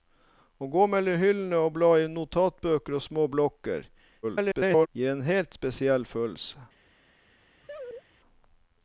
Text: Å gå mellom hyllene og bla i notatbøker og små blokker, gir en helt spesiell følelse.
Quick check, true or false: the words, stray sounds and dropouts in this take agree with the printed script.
false